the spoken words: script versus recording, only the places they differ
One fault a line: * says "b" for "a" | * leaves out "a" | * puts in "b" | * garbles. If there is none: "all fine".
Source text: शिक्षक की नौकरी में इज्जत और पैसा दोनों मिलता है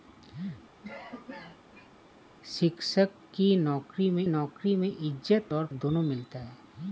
* puts in "नौकरी में"
* leaves out "पैसा"